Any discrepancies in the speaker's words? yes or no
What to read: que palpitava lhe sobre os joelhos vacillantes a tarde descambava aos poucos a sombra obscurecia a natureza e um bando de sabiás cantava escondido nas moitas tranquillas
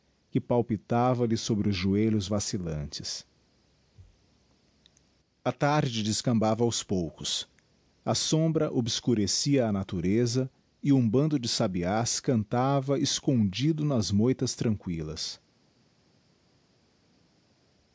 no